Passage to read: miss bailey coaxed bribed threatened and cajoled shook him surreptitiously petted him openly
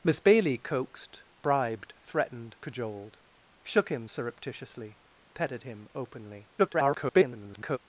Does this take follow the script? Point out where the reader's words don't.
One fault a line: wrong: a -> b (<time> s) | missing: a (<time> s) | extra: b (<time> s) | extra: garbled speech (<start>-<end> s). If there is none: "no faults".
missing: and (2.5 s)
extra: garbled speech (6.6-7.8 s)